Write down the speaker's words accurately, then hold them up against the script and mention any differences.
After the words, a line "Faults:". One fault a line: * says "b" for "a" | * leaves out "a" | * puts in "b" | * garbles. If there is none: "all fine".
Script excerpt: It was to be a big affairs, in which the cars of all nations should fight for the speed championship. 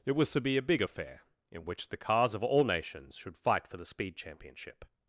It was to be a big affair, in which the cars of all nations should fight for the speed championship.
Faults:
* says "affair" for "affairs"